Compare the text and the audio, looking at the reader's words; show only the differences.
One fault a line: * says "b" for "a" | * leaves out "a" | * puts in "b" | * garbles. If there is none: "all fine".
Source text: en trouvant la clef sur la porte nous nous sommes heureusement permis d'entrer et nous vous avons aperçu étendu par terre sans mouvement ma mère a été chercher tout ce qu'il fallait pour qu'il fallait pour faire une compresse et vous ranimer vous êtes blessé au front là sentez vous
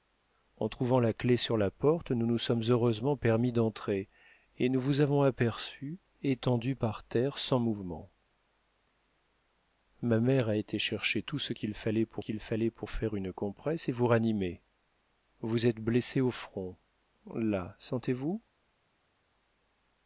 all fine